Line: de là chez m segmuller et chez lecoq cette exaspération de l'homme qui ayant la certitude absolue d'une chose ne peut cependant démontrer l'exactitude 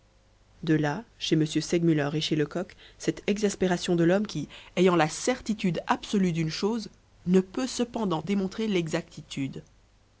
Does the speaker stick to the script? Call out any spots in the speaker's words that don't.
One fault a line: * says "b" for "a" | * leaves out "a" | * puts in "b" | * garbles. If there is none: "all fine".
all fine